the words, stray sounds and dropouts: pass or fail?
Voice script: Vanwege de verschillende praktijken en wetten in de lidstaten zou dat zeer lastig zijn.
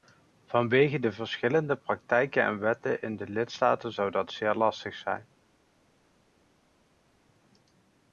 pass